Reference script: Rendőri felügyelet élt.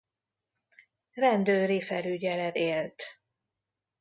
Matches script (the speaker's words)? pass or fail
pass